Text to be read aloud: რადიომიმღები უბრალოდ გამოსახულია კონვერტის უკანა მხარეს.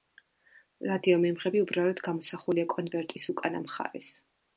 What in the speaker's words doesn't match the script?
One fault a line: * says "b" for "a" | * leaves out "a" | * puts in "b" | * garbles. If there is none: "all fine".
all fine